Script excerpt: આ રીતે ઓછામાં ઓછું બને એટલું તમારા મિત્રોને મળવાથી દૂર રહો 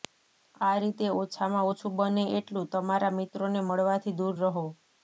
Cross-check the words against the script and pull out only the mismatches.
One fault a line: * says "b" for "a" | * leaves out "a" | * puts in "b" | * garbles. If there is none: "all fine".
all fine